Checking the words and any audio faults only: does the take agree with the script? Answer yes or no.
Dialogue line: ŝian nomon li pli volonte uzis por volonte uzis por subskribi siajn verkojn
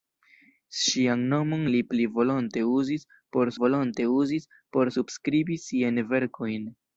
yes